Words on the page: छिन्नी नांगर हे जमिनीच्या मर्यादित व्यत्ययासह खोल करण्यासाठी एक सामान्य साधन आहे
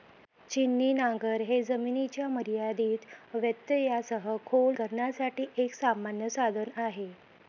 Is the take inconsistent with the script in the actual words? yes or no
no